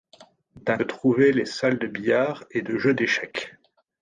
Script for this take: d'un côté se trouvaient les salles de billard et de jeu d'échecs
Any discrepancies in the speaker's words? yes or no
yes